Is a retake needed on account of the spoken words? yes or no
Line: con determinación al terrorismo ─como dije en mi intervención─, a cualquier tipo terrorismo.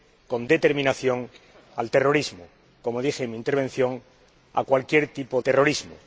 no